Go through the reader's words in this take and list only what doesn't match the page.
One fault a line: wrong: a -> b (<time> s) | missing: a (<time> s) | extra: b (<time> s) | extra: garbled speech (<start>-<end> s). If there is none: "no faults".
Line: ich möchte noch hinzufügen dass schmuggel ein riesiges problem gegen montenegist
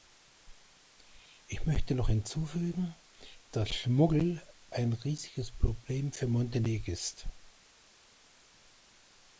wrong: gegen -> für (6.1 s)